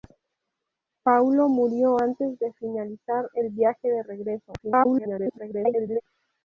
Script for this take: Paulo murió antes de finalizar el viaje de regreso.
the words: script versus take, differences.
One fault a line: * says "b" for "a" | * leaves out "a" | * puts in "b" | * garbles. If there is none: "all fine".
* garbles